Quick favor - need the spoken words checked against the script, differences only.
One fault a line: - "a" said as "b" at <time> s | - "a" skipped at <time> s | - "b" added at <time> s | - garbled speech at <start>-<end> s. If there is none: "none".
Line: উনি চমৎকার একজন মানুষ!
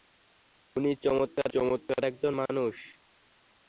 - "চমৎকার" added at 1.5 s